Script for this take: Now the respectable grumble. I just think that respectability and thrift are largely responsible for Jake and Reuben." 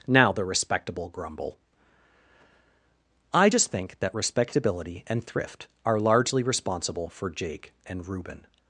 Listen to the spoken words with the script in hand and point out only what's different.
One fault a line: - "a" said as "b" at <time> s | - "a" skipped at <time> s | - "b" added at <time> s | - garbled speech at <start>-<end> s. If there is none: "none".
none